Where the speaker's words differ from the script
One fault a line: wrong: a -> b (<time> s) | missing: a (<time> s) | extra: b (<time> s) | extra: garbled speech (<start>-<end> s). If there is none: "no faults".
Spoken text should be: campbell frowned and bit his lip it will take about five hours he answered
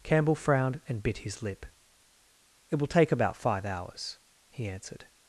no faults